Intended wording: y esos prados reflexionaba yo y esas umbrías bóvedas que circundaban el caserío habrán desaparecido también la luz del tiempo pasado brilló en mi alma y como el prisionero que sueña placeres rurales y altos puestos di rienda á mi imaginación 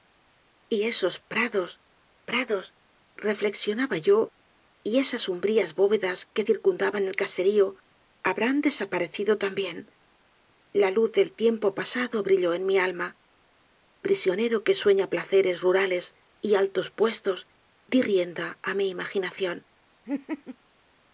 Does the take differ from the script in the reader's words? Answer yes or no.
yes